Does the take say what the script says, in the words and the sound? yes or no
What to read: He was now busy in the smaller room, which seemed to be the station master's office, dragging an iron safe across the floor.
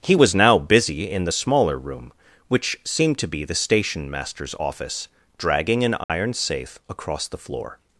no